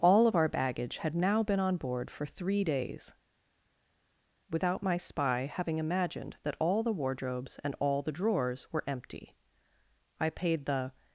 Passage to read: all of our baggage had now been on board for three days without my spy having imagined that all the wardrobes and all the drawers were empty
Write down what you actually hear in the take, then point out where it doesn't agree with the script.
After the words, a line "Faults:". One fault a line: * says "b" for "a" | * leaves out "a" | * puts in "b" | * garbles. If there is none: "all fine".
all of our baggage had now been on board for three days without my spy having imagined that all the wardrobes and all the drawers were empty i paid the
Faults:
* puts in "i paid the"